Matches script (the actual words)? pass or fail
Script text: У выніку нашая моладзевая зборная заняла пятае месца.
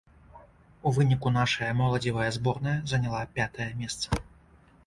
pass